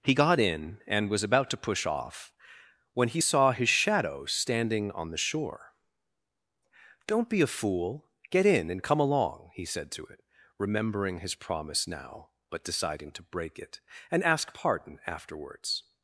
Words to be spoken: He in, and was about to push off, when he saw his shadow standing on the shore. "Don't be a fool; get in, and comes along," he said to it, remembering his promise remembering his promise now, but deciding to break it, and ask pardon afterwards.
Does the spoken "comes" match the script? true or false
false